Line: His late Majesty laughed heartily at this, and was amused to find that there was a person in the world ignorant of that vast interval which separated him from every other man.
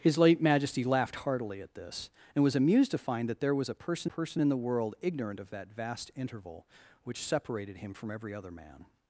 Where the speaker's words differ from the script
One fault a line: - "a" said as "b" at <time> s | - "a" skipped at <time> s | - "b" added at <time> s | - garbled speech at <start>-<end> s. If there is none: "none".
- "person" added at 4.0 s